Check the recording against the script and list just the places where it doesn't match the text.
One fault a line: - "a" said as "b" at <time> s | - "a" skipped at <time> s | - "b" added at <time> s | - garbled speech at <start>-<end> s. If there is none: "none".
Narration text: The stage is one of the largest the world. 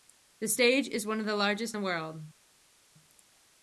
none